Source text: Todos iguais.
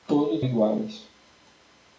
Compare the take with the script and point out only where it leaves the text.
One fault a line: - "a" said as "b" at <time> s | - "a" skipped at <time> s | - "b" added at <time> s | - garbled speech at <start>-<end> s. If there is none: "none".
none